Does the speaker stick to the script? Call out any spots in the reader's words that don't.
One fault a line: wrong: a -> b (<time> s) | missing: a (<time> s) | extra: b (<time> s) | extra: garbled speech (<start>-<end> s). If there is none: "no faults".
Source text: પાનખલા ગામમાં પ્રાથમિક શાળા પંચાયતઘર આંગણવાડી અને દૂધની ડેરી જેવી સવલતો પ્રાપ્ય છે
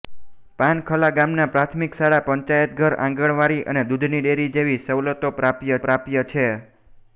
extra: પ્રાપ્ય (5.8 s)